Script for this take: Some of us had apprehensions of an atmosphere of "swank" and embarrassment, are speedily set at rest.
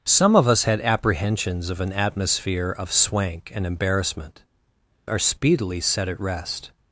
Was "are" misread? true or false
false